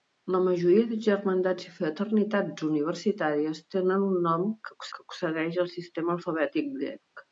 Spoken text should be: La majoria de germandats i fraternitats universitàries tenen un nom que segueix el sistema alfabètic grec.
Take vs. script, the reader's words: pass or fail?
fail